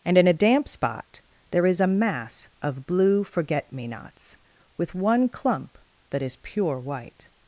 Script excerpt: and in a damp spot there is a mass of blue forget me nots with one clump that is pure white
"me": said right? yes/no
yes